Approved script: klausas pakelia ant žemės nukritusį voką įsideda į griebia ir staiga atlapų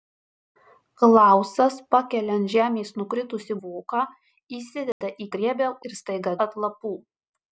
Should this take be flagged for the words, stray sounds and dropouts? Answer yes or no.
yes